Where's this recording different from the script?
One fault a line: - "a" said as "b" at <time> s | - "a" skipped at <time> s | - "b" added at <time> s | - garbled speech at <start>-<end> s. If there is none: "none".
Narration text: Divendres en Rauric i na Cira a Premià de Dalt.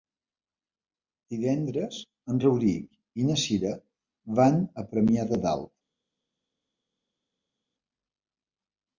- "van" added at 4.4 s